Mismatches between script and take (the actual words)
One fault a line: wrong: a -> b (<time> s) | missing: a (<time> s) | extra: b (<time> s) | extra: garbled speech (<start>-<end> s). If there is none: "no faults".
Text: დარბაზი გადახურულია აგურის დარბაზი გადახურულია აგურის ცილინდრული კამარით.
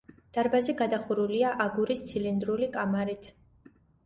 missing: დარბაზი გადახურულია აგურის (2.0 s)